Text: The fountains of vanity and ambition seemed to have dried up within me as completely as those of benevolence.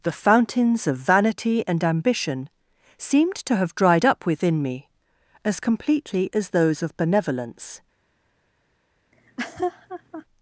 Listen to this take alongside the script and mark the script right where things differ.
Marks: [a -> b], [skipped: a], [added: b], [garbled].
The fountains of vanity and ambition seemed to have dried up within me as completely as those of benevolence.